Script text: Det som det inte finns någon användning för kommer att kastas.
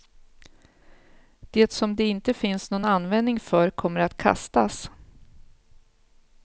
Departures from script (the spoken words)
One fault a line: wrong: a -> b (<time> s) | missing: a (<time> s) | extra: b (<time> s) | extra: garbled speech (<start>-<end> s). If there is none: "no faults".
no faults